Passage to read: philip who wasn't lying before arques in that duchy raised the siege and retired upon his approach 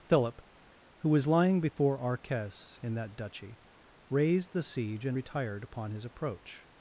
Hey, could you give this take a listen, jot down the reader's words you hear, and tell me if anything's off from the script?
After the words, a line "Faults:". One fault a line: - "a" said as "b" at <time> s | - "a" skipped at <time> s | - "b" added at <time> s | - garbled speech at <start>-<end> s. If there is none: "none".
philip who was lying before arques in that duchy raised the siege and retired upon his approach
Faults:
- "wasn't" said as "was" at 1.1 s